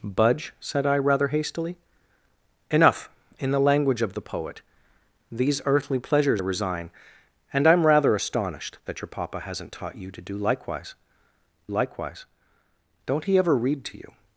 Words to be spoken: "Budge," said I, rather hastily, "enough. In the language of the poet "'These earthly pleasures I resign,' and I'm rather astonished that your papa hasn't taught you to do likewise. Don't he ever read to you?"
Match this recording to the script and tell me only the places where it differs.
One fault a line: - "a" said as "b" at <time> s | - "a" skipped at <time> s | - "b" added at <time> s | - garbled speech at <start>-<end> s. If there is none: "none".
- "I" skipped at 6.4 s
- "likewise" added at 11.7 s